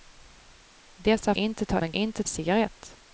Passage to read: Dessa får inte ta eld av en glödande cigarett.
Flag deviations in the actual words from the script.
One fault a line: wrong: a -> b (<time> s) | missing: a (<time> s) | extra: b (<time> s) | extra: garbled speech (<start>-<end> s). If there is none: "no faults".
missing: får (1.4 s)
missing: eld (1.8 s)
wrong: glödande -> inte (1.9 s)